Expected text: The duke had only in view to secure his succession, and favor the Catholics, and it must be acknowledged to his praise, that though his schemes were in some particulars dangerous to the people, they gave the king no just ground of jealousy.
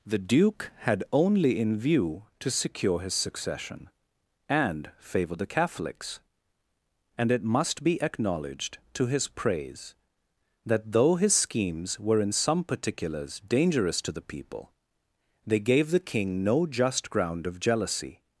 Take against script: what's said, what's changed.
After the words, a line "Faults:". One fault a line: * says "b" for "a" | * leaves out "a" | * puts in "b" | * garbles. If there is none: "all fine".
The duke had only in view to secure his succession, and favor the Catholics, and it must be acknowledged to his praise, that though his schemes were in some particulars dangerous to the people, they gave the king no just ground of jealousy.
Faults:
all fine